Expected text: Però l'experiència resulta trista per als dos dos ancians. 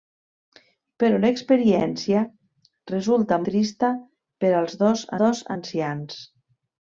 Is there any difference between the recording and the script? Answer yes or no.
no